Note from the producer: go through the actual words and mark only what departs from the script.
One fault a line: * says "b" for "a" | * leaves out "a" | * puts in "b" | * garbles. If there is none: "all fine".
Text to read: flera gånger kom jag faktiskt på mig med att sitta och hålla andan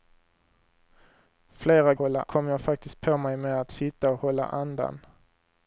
* says "hålla" for "gånger"